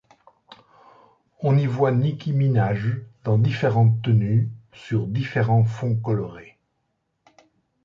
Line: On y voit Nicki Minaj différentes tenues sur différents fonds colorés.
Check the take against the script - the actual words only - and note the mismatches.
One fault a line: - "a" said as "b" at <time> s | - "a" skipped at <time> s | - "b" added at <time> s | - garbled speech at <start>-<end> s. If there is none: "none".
- "dans" added at 3.2 s